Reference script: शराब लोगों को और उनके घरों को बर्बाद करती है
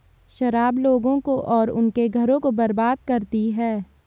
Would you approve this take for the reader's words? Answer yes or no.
yes